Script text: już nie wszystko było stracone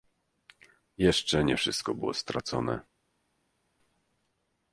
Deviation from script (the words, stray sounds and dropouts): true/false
true